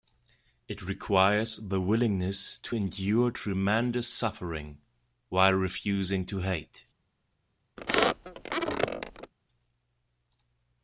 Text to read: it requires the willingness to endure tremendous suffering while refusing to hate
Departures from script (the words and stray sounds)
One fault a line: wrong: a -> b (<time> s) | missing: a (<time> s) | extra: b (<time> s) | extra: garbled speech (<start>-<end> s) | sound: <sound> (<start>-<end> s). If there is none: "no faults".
sound: squeak (7.8-9.3 s)